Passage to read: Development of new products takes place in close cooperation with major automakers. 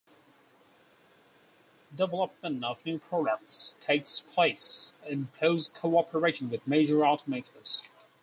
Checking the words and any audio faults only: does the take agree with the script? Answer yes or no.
yes